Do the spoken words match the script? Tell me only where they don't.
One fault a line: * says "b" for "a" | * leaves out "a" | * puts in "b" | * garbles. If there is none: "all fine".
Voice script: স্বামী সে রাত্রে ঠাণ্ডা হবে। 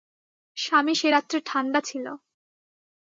* says "ছিল" for "হবে"